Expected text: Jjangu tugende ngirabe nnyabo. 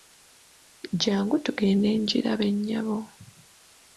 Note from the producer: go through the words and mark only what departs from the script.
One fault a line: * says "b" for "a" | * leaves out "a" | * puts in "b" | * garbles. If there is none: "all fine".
all fine